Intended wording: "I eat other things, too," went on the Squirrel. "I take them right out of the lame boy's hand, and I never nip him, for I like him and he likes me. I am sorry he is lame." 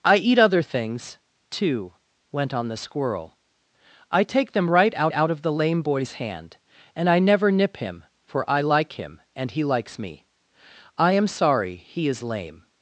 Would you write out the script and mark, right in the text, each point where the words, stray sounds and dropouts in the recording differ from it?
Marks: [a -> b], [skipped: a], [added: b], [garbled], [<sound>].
"I eat other things, too," went on the Squirrel. "I take them right out [added: out] of the lame boy's hand, and I never nip him, for I like him and he likes me. I am sorry he is lame."